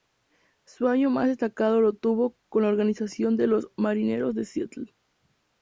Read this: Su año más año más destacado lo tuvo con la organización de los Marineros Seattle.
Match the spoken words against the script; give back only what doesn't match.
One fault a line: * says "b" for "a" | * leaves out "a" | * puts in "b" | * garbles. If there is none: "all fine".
* leaves out "año más"
* puts in "de"